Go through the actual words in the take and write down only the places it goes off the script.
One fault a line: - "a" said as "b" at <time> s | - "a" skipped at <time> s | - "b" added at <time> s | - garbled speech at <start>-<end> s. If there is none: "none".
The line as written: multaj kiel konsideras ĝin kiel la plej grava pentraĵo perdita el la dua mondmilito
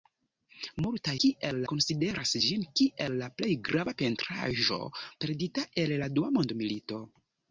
none